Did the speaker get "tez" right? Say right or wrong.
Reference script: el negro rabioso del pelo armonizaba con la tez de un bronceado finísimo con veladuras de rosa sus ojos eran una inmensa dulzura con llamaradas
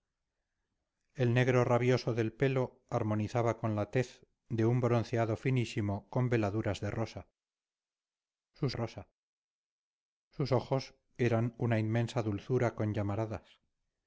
right